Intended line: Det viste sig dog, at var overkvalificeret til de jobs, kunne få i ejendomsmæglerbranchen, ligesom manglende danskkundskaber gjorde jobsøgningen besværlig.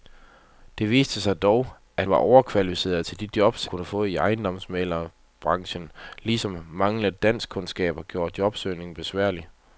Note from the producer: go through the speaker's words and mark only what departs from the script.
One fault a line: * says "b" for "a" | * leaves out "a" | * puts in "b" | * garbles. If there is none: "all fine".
all fine